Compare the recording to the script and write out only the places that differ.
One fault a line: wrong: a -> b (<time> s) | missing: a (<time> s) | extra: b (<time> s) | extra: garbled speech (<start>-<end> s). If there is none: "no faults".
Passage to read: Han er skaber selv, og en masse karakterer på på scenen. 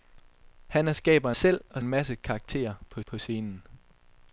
no faults